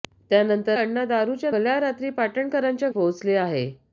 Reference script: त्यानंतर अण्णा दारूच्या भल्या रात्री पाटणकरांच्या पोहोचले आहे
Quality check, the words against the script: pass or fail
pass